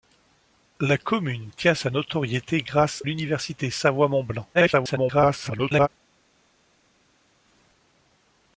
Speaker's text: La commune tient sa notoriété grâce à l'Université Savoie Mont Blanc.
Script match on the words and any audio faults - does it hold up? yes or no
no